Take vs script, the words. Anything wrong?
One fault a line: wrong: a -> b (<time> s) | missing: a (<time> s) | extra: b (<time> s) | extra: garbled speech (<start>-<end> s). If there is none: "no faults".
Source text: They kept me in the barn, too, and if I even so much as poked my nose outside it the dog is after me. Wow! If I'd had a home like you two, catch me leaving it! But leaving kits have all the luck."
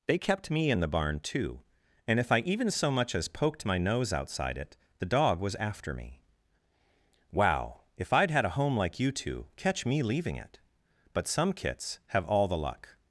wrong: is -> was (5.4 s)
wrong: leaving -> some (11.3 s)